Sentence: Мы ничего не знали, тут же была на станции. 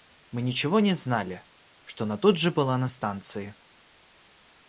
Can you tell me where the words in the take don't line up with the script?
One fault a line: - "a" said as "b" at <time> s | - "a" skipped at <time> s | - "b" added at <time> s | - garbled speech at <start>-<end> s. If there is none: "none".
- "что она" added at 1.8 s